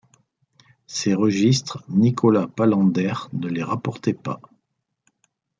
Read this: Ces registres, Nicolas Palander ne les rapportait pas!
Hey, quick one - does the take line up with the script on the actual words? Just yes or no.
yes